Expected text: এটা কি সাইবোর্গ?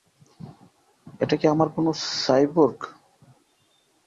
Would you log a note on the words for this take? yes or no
yes